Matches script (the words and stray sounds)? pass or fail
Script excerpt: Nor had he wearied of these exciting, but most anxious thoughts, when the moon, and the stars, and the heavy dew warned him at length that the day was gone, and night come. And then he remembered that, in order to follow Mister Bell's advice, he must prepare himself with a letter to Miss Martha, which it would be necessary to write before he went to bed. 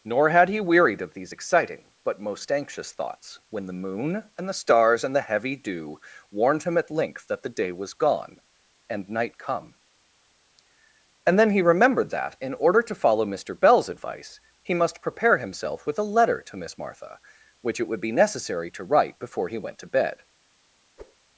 fail